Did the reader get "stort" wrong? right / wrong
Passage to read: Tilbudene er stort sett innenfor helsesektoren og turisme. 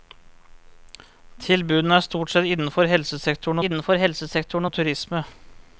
right